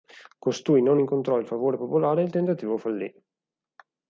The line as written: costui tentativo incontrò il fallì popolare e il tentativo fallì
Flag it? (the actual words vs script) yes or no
yes